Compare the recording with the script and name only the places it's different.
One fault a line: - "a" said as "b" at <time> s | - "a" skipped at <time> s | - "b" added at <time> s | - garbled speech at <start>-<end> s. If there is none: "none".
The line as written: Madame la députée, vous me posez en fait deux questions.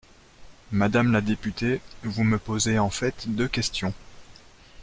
none